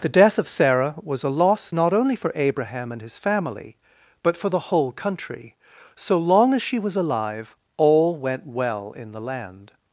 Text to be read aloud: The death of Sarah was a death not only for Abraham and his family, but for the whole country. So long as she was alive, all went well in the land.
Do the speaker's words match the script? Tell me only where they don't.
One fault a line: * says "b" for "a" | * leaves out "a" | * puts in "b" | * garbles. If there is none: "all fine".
* says "loss" for "death"